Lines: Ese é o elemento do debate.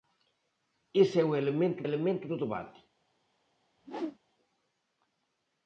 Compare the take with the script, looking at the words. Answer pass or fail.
fail